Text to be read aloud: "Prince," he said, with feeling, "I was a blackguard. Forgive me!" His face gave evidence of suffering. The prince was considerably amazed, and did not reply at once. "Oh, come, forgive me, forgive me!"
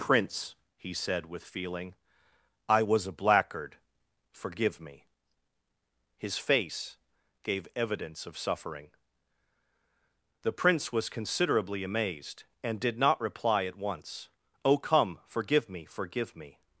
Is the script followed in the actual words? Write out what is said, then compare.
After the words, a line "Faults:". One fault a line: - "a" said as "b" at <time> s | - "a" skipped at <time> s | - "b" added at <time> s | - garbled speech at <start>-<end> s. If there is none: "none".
"Prince," he said, with feeling, "I was a blackguard. Forgive me!" His face gave evidence of suffering. The prince was considerably amazed, and did not reply at once. "Oh, come, forgive me, forgive me!"
Faults:
none